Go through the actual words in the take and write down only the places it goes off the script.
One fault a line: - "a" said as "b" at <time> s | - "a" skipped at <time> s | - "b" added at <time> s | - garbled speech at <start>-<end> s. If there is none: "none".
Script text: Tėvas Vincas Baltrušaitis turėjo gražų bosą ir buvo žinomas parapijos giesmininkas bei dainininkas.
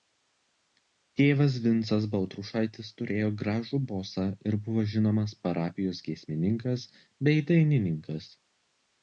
none